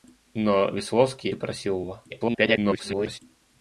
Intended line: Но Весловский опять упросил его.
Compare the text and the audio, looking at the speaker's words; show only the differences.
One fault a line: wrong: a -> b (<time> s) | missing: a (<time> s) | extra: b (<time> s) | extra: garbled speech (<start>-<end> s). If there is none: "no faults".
missing: опять (1.3 s)
extra: garbled speech (2.1-3.2 s)